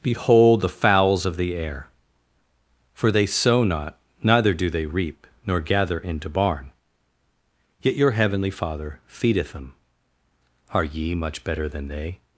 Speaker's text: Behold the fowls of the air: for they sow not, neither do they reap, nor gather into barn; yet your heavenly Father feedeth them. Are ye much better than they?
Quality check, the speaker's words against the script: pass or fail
pass